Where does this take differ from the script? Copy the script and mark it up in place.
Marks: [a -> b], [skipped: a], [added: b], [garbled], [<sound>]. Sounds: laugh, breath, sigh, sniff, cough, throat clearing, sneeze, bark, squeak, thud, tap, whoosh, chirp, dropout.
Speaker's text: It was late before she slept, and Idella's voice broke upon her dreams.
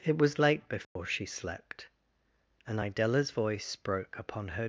It was late before [dropout] she slept, and Idella's voice broke upon her [skipped: dreams.]